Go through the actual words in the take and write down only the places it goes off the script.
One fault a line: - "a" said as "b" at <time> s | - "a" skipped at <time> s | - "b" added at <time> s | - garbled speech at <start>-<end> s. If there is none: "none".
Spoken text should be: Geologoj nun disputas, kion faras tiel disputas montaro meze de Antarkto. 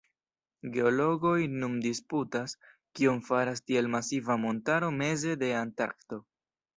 - "disputas" said as "masiva" at 4.0 s